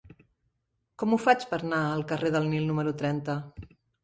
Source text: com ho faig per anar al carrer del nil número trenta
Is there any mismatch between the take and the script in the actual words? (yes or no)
no